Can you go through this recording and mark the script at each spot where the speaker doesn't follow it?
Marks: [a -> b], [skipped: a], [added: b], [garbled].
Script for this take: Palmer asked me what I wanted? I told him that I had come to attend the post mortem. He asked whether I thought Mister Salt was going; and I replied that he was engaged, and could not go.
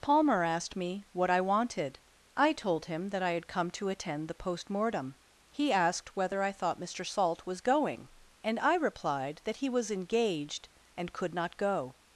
Palmer asked me what I wanted? I told him that I had come to attend the post mortem. He asked whether I thought Mister Salt was going; and I replied that he was engaged, and could not go.